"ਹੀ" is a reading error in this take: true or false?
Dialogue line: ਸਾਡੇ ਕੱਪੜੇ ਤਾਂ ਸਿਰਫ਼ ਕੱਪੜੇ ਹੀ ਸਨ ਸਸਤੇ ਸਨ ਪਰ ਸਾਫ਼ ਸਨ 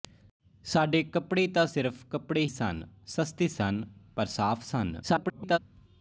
true